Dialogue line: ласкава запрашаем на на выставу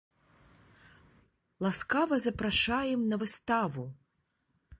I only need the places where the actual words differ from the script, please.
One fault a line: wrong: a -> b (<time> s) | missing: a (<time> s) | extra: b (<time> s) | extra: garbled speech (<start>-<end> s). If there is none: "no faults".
missing: на (3.2 s)